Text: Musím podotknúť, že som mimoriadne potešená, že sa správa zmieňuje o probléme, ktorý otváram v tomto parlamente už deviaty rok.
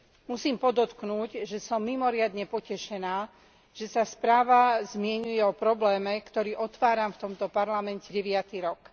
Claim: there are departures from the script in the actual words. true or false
true